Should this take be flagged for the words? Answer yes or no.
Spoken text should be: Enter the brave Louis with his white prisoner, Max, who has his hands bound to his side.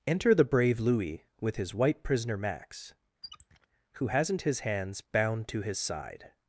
yes